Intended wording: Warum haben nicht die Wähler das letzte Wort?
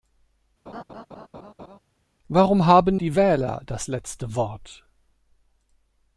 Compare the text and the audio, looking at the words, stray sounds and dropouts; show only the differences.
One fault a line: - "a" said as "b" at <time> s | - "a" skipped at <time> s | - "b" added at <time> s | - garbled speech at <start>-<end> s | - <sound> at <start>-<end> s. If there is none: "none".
- laugh at 0.7-1.8 s
- "nicht" skipped at 3.0 s